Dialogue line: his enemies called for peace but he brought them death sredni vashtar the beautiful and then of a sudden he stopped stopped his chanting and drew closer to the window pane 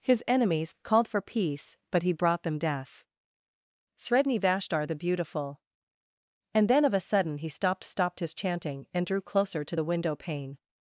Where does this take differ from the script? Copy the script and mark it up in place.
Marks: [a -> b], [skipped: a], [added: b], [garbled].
his enemies called for peace but he brought them death sredni vashtar the beautiful and then of a sudden he stopped stopped his chanting and drew closer to the window pane